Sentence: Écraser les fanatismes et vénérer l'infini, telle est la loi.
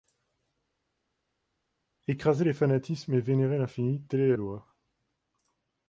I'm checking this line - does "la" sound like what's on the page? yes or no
no